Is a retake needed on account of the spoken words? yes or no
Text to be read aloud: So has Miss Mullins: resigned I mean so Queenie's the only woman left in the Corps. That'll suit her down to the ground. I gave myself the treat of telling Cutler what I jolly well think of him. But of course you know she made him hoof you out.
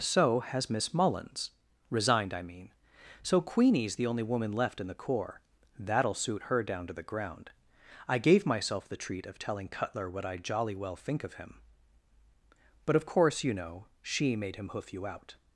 no